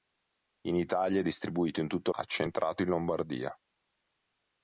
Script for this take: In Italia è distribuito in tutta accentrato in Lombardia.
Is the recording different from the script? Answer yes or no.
no